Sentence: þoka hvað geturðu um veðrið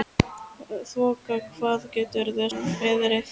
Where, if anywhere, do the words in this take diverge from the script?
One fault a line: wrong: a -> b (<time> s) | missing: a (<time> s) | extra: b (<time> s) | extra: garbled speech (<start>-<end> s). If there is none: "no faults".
no faults